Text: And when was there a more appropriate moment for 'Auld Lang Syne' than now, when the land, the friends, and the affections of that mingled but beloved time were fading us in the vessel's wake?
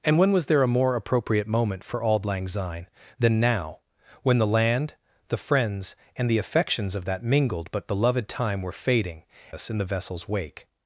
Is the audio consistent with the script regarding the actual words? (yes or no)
yes